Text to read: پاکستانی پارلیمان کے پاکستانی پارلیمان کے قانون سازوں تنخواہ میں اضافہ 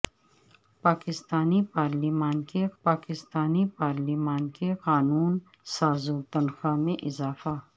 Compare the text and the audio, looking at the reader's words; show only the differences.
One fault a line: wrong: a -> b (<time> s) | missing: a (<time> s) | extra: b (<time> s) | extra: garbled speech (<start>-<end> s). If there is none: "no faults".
no faults